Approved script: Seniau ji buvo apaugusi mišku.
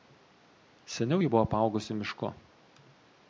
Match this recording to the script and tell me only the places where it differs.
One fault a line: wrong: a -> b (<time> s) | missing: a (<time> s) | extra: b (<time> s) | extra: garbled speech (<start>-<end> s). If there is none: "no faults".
no faults